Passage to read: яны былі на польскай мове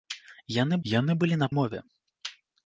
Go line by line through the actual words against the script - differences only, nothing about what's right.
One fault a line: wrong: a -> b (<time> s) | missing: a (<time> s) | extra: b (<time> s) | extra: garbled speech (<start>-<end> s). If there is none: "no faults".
extra: яны (0.9 s)
missing: польскай (1.5 s)